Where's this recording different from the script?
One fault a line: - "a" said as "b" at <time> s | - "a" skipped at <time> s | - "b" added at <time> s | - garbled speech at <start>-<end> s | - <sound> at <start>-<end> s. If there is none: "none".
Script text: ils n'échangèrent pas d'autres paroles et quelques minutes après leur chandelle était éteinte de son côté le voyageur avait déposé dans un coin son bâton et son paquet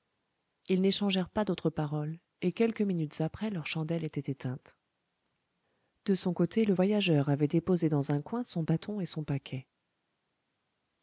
none